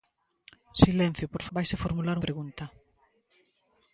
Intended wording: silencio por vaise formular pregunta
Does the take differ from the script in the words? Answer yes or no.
no